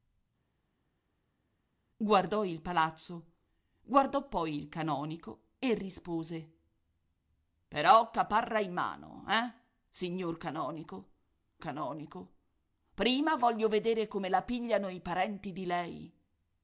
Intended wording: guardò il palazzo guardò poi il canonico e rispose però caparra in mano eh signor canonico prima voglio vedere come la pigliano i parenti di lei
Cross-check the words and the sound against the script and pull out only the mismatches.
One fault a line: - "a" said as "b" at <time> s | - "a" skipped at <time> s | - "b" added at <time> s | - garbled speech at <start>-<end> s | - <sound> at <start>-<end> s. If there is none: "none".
- "canonico" added at 11.6 s